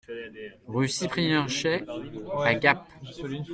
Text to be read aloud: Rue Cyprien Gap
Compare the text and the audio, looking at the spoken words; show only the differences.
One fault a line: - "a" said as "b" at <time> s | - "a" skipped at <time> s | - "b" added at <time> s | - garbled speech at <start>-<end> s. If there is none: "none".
- "Chaix à" added at 1.5 s